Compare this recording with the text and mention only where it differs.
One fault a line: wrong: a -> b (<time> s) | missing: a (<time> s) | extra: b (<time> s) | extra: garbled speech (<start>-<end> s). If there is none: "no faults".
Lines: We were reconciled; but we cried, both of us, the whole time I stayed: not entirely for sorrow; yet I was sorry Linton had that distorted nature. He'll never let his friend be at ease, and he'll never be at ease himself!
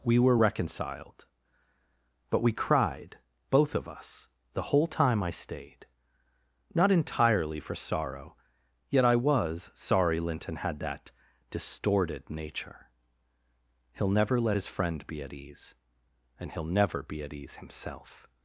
no faults